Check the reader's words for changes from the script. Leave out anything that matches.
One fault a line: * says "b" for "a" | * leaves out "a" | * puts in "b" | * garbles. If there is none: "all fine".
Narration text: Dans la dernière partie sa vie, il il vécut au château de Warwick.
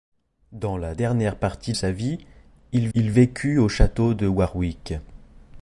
all fine